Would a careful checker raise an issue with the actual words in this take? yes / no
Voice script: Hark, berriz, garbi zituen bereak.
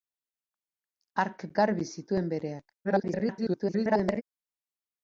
yes